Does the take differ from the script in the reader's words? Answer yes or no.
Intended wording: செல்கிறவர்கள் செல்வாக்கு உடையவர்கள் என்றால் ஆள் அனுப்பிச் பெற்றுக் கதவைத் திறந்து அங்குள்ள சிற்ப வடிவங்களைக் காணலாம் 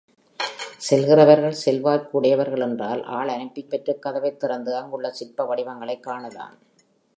no